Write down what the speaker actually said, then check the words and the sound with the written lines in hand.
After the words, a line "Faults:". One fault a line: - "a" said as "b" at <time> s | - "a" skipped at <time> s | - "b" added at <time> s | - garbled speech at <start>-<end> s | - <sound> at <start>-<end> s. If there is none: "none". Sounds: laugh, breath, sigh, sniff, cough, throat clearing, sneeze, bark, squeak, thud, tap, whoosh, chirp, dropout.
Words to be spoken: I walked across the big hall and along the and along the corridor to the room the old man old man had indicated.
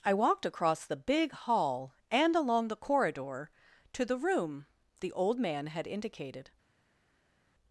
I walked across the big hall and along the corridor to the room the old man had indicated.
Faults:
- "and along the" skipped at 2.9 s
- "old man" skipped at 5.7 s